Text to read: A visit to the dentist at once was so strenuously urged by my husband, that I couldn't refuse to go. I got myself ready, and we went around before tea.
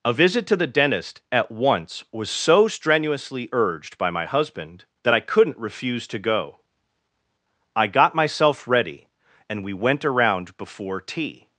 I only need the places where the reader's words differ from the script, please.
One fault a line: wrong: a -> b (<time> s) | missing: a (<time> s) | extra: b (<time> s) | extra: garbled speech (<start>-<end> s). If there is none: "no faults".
no faults